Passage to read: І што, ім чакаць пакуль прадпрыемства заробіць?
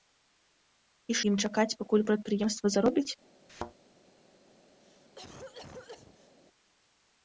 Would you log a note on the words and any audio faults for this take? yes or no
yes